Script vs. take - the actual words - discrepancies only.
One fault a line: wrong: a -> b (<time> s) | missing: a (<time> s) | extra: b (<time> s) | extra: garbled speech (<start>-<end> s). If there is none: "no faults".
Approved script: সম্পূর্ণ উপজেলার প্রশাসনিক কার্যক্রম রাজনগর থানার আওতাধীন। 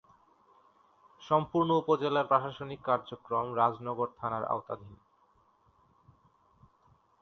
no faults